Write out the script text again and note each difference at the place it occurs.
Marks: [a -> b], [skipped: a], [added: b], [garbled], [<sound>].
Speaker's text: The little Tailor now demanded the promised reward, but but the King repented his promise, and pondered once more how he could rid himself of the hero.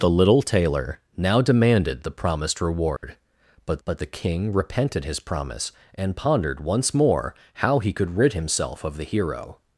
The little Tailor now demanded the promised reward, [dropout] but but the King repented his promise, and pondered once more how he could rid himself of the hero.